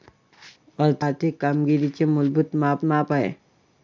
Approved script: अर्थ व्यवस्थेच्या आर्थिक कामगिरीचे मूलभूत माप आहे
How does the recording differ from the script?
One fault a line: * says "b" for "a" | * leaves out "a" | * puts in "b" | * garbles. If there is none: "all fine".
* leaves out "व्यवस्थेच्या"
* puts in "माप"